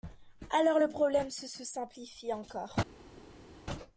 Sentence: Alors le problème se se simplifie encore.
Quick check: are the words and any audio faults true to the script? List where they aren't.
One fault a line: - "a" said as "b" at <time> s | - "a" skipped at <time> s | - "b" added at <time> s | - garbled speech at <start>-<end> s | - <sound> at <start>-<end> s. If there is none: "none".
none